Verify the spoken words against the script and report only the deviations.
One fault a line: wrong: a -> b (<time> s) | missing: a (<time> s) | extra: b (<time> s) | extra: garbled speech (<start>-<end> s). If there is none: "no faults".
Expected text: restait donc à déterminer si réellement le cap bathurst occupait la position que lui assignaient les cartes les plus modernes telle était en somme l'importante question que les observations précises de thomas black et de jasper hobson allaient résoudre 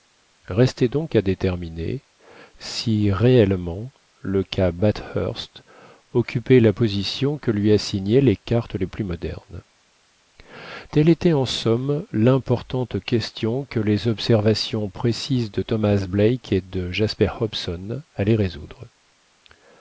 no faults